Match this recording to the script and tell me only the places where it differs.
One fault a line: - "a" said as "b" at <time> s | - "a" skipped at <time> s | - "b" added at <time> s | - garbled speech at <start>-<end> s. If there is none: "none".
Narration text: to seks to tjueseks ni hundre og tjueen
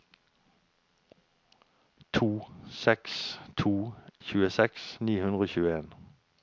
none